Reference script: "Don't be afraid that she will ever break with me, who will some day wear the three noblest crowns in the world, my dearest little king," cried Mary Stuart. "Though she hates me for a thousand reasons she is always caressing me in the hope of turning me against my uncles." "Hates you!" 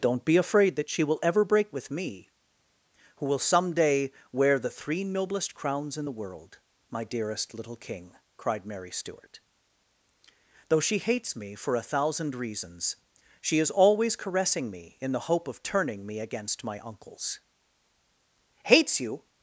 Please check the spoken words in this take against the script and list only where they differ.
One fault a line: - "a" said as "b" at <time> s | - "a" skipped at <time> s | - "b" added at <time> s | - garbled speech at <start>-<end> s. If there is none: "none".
none